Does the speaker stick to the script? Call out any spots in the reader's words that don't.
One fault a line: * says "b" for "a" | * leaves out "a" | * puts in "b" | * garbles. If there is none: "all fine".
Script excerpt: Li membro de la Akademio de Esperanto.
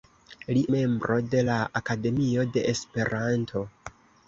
all fine